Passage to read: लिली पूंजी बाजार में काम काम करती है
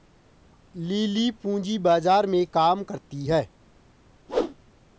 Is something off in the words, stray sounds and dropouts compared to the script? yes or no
yes